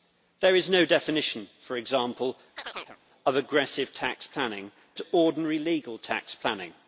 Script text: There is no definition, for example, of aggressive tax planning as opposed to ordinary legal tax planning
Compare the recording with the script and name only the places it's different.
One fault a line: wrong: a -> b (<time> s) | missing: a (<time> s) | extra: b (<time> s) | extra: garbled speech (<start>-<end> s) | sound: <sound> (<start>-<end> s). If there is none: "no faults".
sound: chirp (2.6-3.0 s)
missing: as opposed (4.7 s)